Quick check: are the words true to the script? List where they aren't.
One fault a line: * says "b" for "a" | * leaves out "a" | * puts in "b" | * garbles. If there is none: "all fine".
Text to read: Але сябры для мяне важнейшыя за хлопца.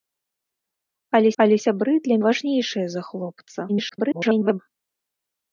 * puts in "але"
* leaves out "мяне"
* garbles